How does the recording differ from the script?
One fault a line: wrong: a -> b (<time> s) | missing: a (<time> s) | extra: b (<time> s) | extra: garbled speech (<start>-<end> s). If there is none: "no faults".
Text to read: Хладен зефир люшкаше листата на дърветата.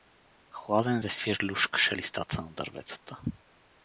no faults